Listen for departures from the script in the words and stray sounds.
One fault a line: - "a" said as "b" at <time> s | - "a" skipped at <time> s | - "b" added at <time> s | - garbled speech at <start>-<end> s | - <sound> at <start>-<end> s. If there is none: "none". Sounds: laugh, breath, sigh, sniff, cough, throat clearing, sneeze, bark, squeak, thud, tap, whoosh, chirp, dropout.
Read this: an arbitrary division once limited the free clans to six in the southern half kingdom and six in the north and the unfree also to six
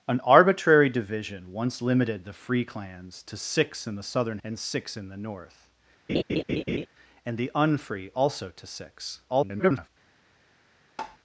- "half kingdom" skipped at 4.4 s
- laugh at 6.1-6.9 s
- garbled speech at 9.3-9.9 s
- tap at 11.0-11.2 s